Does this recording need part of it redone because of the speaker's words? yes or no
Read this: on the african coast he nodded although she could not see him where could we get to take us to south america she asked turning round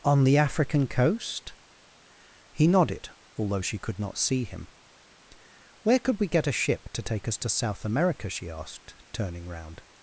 yes